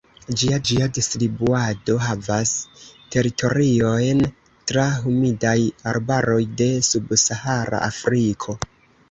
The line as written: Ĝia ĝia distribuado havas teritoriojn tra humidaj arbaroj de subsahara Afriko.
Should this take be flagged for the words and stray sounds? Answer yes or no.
no